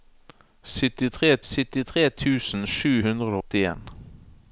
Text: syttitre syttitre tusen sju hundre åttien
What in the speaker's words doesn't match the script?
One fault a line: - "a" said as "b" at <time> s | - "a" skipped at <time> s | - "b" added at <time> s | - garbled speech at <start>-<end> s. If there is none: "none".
none